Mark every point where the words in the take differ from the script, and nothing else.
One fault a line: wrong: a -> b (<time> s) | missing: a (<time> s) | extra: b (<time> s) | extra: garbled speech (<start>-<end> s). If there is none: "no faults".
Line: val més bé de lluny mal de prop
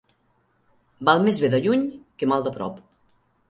extra: que (2.2 s)